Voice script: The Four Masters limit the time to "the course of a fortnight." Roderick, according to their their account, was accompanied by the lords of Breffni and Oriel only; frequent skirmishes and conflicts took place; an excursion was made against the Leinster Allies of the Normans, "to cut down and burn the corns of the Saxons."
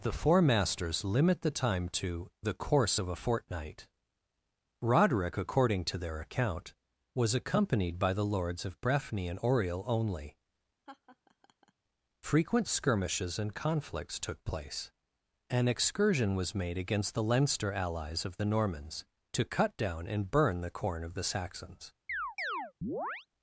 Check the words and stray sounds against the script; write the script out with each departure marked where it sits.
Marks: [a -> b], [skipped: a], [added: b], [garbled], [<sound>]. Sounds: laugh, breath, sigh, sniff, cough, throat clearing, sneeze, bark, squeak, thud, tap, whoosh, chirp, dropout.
The Four Masters limit the time to "the course of a fortnight." Roderick, according to their [skipped: their] account, was accompanied by the lords of Breffni and Oriel only; [laugh] frequent skirmishes and conflicts took place; an excursion was made against the Leinster Allies of the Normans, "to cut down and burn the [corns -> corn] of the Saxons." [chirp]